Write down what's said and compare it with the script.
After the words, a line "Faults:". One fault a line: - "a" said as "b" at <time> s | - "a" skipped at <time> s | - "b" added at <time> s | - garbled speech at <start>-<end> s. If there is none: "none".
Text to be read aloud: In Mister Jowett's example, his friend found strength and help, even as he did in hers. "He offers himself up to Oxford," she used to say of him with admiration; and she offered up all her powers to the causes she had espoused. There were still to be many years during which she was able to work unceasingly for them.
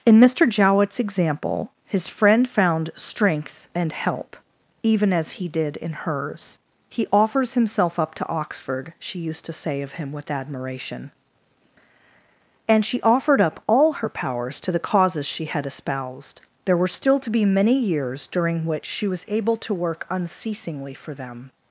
In Mister Jowett's example, his friend found strength and help, even as he did in hers. "He offers himself up to Oxford," she used to say of him with admiration; and she offered up all her powers to the causes she had espoused. There were still to be many years during which she was able to work unceasingly for them.
Faults:
none